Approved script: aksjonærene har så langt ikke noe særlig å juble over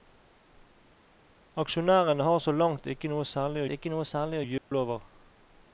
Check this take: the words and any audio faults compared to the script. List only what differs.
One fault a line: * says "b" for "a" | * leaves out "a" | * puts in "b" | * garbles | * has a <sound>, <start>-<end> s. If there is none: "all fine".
* puts in "ikke noe særlig"
* has a dropout, 4.6-4.7 s